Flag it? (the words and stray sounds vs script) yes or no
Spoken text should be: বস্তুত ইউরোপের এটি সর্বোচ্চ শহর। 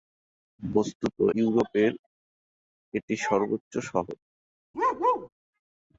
yes